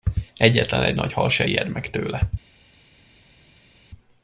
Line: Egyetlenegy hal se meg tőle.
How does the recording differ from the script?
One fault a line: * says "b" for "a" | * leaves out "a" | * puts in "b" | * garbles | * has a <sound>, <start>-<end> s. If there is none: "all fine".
* puts in "nagy"
* puts in "ijed"